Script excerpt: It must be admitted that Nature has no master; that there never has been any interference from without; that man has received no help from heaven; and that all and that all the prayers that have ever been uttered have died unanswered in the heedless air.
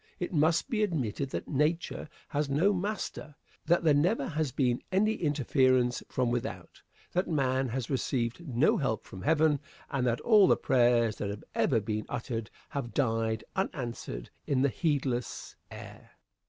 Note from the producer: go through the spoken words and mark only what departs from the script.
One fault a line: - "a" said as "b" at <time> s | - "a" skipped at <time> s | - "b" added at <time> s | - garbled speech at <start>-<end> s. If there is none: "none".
- "and that all" skipped at 10.5 s